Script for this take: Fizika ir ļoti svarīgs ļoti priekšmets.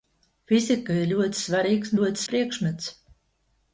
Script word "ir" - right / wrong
right